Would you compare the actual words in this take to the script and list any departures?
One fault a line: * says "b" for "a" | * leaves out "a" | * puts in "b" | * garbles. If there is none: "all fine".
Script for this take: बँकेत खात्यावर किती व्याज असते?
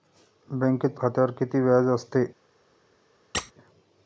all fine